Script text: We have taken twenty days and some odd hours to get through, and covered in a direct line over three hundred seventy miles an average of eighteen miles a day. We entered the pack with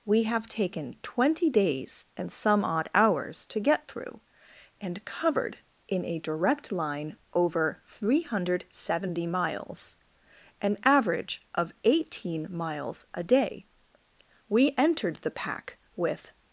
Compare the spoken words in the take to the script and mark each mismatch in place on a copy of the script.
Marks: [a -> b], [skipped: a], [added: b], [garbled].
We have taken twenty days and some odd hours to get through, and covered in a direct line over three hundred seventy miles an average of eighteen miles a day. We entered the pack with